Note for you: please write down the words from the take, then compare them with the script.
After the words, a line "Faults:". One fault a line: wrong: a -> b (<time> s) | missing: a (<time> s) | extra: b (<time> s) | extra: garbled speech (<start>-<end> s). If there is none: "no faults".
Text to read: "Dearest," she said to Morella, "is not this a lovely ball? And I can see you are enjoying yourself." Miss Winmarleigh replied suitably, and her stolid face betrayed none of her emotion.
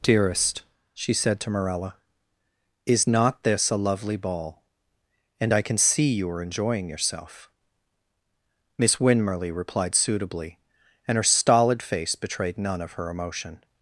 "Dearest," she said to Morella, "is not this a lovely ball? And I can see you are enjoying yourself." Miss Winmarleigh replied suitably, and her stolid face betrayed none of her emotion.
Faults:
no faults